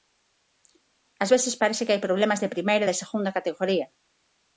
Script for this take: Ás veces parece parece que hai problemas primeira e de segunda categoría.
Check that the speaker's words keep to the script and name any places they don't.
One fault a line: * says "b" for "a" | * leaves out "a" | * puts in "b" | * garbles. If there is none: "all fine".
* leaves out "parece"
* puts in "de"